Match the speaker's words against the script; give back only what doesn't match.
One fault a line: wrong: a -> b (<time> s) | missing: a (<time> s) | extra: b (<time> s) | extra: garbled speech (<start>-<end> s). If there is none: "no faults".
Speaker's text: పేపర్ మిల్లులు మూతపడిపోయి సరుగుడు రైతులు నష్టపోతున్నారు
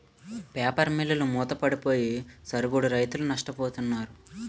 no faults